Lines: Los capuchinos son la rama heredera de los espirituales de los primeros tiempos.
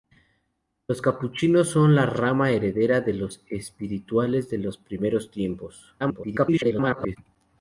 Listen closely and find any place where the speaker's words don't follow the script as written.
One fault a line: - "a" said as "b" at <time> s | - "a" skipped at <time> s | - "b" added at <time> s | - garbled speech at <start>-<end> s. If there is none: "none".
- garbled speech at 6.0-7.2 s